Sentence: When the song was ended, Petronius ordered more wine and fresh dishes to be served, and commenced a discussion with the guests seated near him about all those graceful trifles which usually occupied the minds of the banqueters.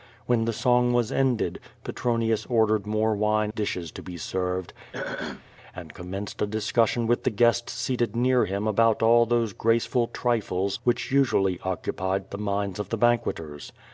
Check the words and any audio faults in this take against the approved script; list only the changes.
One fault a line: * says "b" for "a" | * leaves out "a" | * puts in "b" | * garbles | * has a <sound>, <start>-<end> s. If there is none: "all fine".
* leaves out "and fresh"
* has a throat clearing, 4.9-5.4 s